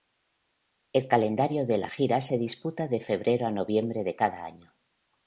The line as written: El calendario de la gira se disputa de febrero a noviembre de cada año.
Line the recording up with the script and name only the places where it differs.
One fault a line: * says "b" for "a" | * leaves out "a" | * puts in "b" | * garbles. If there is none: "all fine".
all fine